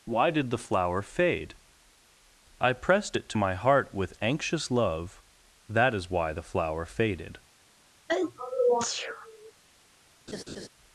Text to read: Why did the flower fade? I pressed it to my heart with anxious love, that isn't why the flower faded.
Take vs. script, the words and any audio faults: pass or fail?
fail